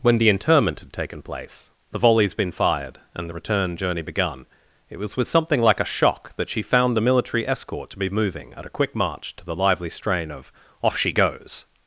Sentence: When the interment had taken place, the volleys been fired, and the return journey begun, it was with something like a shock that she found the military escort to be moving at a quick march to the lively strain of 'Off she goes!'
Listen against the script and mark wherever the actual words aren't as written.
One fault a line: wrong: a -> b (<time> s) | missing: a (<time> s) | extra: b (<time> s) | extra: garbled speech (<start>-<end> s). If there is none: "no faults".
no faults